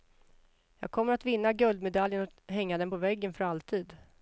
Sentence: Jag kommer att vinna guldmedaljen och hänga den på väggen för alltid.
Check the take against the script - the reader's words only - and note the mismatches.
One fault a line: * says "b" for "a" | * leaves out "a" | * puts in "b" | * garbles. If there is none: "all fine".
all fine